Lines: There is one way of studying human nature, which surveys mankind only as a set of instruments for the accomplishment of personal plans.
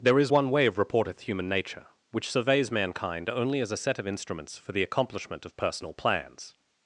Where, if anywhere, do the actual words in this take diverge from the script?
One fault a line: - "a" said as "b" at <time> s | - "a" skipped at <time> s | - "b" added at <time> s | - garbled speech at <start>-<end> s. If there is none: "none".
- "studying" said as "reporteth" at 0.7 s